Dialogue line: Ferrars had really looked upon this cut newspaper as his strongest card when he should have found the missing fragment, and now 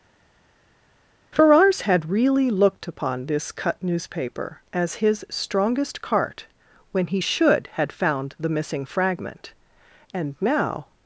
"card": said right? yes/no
no